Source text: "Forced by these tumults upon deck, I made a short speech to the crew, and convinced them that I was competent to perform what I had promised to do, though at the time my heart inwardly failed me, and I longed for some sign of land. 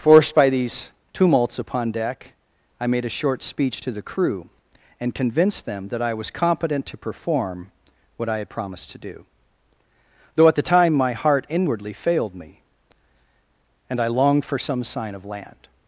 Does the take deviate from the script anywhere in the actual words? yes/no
no